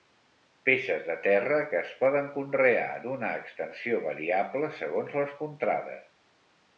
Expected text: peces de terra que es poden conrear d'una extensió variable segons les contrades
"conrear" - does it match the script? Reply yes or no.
yes